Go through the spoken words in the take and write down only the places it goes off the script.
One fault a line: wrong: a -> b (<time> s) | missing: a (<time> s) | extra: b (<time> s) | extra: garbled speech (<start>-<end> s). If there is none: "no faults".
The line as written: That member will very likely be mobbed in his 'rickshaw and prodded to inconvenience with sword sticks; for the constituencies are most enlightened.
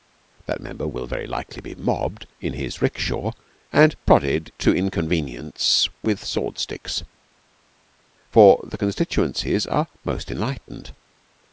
no faults